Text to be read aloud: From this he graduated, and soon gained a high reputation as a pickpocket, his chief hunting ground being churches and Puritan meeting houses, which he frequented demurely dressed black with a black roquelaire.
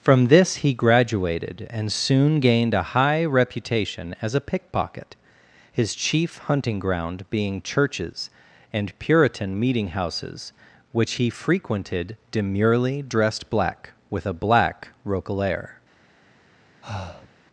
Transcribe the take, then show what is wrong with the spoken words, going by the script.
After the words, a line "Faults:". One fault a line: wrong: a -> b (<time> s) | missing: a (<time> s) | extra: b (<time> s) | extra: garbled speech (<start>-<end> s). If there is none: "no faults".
From this he graduated, and soon gained a high reputation as a pickpocket, his chief hunting ground being churches and Puritan meeting houses, which he frequented demurely dressed black with a black roquelaire.
Faults:
no faults